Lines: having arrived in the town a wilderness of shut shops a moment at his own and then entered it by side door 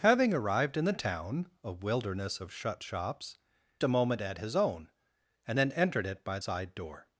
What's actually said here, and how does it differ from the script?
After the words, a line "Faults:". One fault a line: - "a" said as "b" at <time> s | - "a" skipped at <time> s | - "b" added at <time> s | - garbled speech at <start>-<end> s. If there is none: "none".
having arrived in the town a wilderness of shut shops a moment at his own and then entered it by side door
Faults:
none